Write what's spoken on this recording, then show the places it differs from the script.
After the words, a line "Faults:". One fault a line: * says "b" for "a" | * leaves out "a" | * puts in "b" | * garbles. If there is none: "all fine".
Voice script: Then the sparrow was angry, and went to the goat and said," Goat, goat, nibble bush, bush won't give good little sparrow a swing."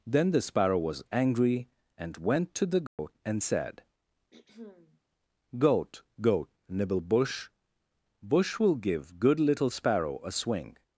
Then the sparrow was angry, and went to the goat and said," Goat, goat, nibble bush, bush will give good little sparrow a swing."
Faults:
* says "will" for "won't"